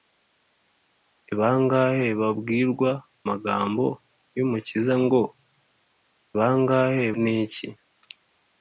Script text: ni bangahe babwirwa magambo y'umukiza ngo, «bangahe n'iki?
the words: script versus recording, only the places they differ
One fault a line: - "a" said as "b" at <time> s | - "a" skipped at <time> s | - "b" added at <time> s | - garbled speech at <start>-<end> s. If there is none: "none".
none